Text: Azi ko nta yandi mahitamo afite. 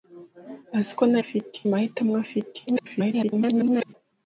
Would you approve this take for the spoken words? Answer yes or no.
no